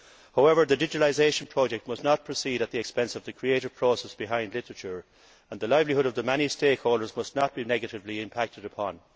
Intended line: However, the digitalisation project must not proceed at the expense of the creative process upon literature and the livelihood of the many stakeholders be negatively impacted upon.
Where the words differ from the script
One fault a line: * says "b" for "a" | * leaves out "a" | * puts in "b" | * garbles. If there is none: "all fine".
* says "behind" for "upon"
* puts in "must not"